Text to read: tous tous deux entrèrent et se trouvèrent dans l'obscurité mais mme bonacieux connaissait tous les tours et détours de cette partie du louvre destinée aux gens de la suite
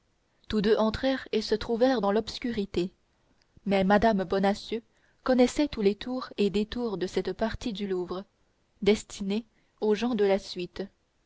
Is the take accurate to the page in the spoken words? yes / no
no